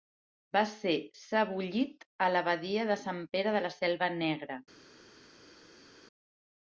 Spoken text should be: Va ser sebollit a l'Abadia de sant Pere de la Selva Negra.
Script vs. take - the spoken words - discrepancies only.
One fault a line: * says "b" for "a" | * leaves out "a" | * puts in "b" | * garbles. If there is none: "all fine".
all fine